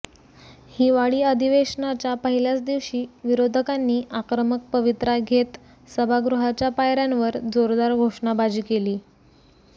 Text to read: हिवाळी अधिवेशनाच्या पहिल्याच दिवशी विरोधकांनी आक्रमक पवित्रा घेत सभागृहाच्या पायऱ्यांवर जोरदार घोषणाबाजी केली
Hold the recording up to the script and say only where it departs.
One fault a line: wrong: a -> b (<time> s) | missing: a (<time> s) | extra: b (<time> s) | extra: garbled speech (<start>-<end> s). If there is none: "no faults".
no faults